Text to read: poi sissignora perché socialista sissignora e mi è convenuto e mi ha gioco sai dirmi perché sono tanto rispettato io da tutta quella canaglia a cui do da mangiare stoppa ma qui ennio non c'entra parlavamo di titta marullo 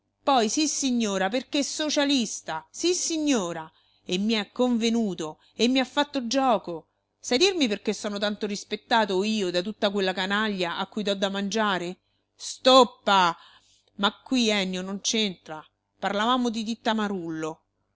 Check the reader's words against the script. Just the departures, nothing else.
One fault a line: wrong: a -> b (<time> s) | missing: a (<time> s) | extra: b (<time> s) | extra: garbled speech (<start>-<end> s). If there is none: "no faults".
extra: fatto (5.8 s)